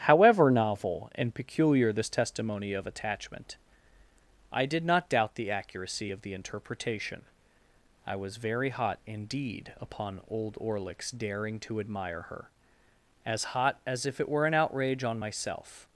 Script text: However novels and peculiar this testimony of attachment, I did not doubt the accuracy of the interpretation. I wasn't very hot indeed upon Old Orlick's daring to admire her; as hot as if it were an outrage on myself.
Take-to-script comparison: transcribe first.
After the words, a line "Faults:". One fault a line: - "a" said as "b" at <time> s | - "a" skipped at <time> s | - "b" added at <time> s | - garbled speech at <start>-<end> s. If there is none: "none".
However novel and peculiar this testimony of attachment, I did not doubt the accuracy of the interpretation. I was very hot indeed upon Old Orlick's daring to admire her; as hot as if it were an outrage on myself.
Faults:
- "novels" said as "novel" at 0.5 s
- "wasn't" said as "was" at 8.1 s